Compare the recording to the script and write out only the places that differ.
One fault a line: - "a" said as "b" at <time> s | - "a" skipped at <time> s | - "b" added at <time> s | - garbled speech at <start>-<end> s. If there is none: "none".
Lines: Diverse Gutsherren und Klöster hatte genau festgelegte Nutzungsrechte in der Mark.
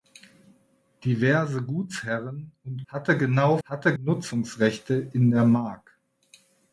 - "Klöster" skipped at 2.9 s
- "festgelegte" said as "hatte" at 3.6 s